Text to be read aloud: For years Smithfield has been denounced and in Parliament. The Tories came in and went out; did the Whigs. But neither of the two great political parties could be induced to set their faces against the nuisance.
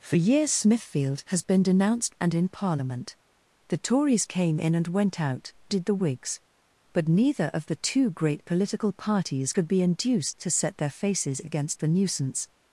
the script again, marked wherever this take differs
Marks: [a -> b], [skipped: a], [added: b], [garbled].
For years Smithfield has been denounced and in Parliament. The Tories came in and went out; did the Whigs. But neither of the two great political parties could be induced to set their faces against the nuisance.